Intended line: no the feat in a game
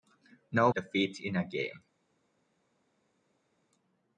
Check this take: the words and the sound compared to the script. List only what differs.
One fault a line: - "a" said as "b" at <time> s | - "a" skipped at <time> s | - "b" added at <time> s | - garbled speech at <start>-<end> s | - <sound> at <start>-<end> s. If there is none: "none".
none